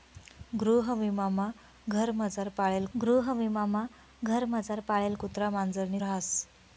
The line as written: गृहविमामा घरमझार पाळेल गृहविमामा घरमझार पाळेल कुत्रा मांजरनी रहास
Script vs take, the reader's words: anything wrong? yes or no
no